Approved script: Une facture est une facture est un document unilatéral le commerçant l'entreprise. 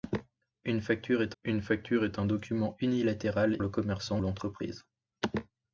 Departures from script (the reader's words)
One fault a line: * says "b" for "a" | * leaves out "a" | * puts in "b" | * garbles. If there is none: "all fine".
all fine